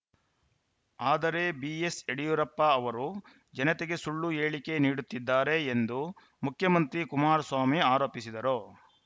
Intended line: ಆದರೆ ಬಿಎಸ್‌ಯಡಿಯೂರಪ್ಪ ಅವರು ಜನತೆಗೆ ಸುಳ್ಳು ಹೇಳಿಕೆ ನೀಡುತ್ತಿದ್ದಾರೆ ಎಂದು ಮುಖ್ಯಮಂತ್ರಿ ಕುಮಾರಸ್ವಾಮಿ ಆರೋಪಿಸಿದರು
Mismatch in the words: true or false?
false